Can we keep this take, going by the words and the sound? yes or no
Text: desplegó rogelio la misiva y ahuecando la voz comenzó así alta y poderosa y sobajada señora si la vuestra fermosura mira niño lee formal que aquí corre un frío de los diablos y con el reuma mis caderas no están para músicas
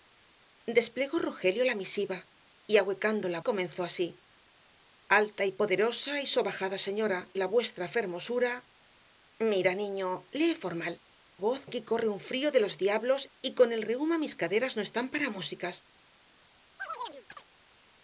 no